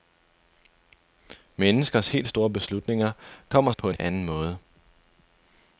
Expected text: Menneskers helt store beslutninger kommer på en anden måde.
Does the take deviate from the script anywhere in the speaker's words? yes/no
no